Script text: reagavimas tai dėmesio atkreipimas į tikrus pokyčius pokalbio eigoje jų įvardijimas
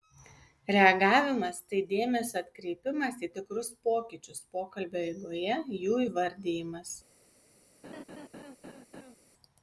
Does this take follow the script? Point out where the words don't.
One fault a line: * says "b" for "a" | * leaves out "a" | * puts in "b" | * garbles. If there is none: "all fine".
all fine